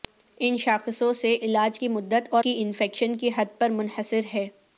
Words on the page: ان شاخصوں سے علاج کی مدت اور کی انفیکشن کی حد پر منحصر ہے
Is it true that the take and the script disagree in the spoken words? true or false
false